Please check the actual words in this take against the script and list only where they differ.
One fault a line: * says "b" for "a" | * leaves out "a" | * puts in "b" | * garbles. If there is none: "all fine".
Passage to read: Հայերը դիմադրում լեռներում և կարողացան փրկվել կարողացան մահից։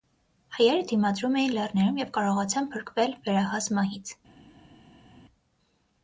* puts in "էին"
* says "վերահաս" for "կարողացան"